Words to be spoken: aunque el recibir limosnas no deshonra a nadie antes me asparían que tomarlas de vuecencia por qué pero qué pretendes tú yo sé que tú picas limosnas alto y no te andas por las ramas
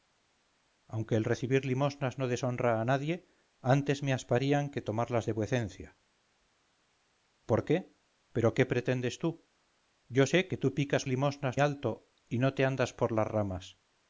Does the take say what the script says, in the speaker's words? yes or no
yes